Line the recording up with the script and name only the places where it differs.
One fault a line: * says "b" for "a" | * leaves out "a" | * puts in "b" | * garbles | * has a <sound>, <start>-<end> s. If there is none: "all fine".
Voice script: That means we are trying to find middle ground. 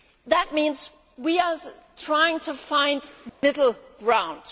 * has a dropout, 3.3-3.4 s